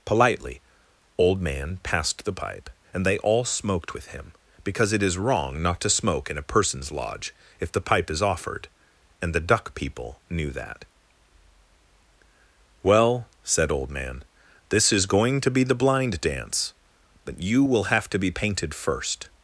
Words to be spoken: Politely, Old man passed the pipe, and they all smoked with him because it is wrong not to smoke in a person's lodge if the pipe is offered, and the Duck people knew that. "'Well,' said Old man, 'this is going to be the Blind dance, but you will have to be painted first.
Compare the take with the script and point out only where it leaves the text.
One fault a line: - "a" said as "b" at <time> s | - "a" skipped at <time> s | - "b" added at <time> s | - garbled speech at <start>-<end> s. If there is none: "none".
none